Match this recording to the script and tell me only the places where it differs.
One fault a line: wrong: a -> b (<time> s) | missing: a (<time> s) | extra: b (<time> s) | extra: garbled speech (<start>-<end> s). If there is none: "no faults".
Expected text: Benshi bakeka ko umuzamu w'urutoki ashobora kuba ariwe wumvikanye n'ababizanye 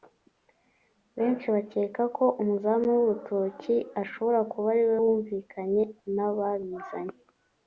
no faults